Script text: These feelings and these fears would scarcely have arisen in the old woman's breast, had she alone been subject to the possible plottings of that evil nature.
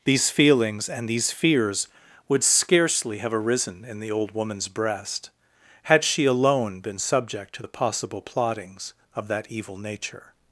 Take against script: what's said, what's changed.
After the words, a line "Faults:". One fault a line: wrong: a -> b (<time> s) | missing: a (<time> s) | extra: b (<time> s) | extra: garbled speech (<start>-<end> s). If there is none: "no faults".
These feelings and these fears would scarcely have arisen in the old woman's breast, had she alone been subject to the possible plottings of that evil nature.
Faults:
no faults